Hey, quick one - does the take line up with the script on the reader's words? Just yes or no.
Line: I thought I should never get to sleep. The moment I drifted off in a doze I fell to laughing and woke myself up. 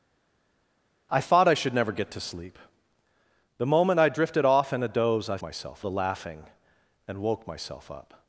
no